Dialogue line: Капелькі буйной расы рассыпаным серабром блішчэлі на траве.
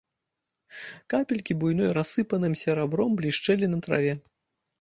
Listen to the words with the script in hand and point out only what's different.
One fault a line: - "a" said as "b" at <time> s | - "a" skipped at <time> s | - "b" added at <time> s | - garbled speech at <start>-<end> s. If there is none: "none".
- "расы" skipped at 1.9 s